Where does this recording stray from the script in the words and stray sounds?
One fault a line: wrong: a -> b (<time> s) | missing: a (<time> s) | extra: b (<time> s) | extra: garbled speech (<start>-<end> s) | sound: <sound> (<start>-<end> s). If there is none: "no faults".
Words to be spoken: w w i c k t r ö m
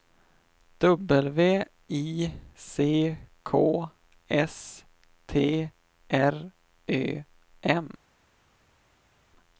missing: w (1.6 s)
extra: s (4.3 s)